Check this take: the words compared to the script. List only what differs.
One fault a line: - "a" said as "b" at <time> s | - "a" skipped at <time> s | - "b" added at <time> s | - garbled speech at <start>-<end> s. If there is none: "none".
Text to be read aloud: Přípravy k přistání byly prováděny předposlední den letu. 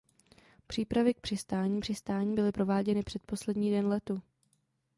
- "přistání" added at 1.8 s